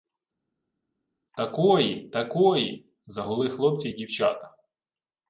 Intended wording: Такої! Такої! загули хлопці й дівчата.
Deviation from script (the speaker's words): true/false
false